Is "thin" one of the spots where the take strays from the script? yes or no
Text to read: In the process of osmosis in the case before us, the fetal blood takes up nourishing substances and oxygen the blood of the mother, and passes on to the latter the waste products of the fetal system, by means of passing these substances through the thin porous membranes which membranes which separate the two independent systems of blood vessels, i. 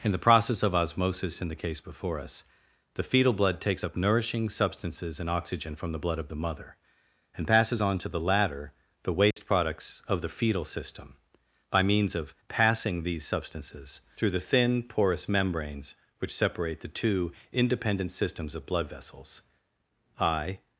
no